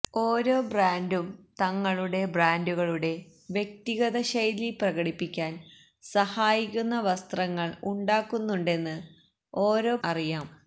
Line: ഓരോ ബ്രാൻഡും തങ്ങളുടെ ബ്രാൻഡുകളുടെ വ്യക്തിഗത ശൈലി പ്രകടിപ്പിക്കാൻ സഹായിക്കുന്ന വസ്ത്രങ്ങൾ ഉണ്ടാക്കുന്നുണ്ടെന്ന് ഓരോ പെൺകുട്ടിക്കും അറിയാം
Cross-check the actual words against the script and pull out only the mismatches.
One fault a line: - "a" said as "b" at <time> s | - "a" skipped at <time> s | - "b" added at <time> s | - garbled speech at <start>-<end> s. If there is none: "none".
- "പെൺകുട്ടിക്കും" skipped at 9.9 s